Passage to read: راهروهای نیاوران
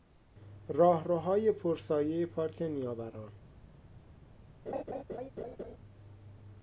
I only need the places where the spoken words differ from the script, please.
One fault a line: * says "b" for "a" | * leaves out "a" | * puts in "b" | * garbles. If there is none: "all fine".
* puts in "پر سایهی پارک"